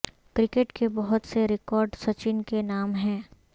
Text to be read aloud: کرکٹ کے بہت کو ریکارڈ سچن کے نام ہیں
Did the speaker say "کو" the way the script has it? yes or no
no